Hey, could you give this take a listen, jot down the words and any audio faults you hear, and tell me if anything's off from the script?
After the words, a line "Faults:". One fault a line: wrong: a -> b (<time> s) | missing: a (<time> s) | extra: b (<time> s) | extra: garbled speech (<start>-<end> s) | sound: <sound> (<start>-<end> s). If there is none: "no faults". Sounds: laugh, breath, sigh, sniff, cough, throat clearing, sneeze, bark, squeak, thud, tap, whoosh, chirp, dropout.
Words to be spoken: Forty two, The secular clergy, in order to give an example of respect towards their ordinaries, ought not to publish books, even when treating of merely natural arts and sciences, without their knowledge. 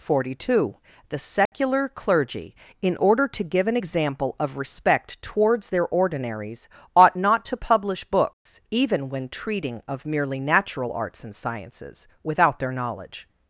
Forty two, The secular clergy, in order to give an example of respect towards their ordinaries, ought not to publish books, even when treating of merely natural arts and sciences, without their knowledge.
Faults:
sound: dropout (1.5-1.5 s)
sound: dropout (8.3-8.5 s)